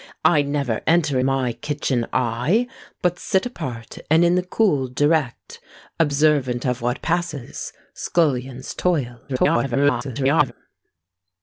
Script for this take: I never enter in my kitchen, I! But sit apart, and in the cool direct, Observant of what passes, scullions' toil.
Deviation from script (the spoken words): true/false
true